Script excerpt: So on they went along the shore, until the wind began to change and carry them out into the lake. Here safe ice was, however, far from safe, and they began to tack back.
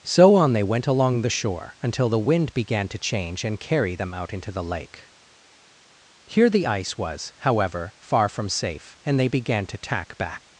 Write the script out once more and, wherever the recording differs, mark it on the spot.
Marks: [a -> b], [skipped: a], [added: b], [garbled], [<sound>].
So on they went along the shore, until the wind began to change and carry them out into the lake. Here [safe -> the] ice was, however, far from safe, and they began to tack back.